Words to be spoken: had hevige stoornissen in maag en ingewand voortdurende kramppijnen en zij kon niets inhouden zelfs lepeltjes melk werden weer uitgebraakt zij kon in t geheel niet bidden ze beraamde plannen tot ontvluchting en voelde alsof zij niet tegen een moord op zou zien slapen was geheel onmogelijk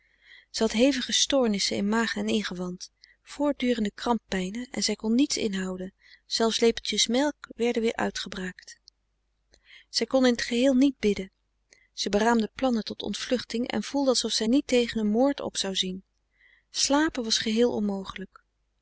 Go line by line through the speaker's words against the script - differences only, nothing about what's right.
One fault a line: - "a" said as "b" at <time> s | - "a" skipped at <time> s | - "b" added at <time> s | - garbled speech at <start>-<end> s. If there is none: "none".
none